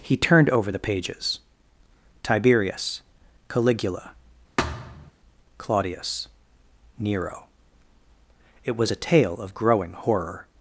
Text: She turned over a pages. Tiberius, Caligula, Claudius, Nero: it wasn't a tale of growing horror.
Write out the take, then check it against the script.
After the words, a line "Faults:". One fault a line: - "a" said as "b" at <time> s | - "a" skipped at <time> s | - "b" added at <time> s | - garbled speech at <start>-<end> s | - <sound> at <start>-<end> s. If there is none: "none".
He turned over the pages. Tiberius, Caligula, Claudius, Nero: it was a tale of growing horror.
Faults:
- "She" said as "He" at 0.0 s
- "a" said as "the" at 0.7 s
- thud at 4.6-5.1 s
- "wasn't" said as "was" at 8.7 s